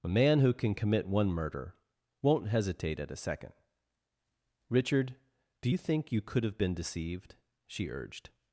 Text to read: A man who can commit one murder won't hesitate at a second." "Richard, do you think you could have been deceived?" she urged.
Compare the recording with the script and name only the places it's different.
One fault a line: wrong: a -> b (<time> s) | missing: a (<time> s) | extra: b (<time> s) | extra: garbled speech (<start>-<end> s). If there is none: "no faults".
no faults